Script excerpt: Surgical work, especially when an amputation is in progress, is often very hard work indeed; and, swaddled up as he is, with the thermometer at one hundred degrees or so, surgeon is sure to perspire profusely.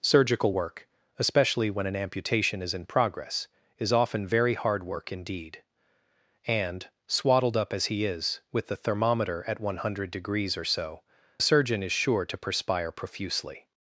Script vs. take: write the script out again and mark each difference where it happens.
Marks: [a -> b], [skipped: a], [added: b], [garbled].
Surgical work, especially when an amputation is in progress, is often very hard work indeed; and, swaddled up as he is, with the thermometer at one hundred degrees or so, surgeon is sure to perspire profusely.